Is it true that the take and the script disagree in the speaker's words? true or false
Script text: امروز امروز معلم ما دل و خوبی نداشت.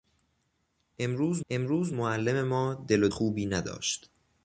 false